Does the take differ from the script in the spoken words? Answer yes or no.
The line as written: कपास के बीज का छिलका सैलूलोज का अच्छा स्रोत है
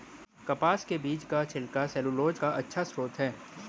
no